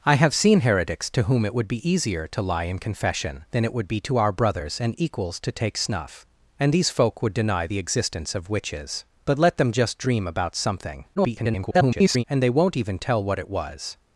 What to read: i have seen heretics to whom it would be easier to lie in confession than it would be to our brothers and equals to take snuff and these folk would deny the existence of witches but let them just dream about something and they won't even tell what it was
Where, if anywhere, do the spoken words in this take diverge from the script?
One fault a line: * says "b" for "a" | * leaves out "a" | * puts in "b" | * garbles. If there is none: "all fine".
* garbles